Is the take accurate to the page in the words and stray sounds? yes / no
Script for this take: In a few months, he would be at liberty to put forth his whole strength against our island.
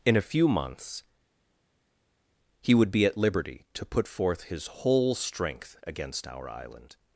yes